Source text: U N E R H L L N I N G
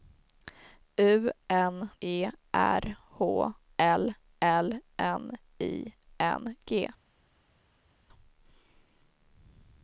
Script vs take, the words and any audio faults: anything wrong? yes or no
no